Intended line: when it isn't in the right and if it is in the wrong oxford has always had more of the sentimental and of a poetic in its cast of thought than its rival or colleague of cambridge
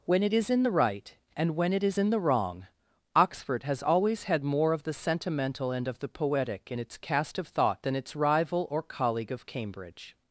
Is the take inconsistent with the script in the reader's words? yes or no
yes